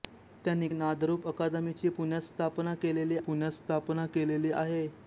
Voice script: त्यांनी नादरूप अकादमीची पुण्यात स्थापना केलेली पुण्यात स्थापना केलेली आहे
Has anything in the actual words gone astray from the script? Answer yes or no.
no